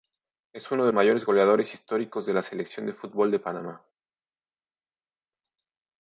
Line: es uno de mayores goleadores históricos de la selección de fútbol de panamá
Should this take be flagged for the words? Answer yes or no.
no